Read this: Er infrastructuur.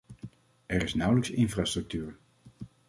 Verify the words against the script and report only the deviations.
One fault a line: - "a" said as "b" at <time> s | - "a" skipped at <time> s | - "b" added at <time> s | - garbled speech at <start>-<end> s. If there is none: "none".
- "is nauwelijks" added at 0.8 s